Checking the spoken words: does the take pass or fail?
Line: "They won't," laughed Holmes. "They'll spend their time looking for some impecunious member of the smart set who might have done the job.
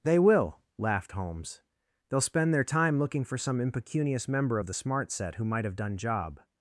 fail